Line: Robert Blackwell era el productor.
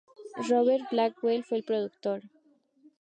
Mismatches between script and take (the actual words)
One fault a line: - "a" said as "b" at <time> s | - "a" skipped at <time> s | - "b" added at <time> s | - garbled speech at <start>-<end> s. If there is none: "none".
- "era" said as "fue" at 1.4 s